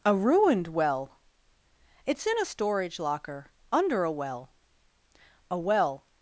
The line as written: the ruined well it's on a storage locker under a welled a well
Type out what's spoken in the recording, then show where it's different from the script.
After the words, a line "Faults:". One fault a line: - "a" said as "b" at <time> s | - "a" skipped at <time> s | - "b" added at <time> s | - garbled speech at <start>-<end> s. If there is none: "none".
a ruined well it's in a storage locker under a well a well
Faults:
- "the" said as "a" at 0.0 s
- "on" said as "in" at 2.3 s
- "welled" said as "well" at 4.1 s